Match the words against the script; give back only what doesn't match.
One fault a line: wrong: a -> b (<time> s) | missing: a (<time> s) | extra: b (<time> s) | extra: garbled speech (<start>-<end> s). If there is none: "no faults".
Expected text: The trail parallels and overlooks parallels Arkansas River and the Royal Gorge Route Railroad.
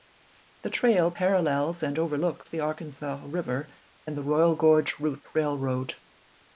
wrong: parallels -> the (2.5 s)